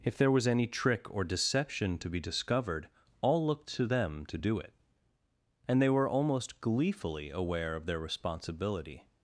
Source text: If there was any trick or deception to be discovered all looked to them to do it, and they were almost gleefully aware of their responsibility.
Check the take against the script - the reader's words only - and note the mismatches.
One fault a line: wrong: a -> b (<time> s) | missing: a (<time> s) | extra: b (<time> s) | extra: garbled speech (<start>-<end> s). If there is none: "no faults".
no faults